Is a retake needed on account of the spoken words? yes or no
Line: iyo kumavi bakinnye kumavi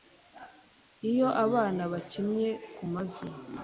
yes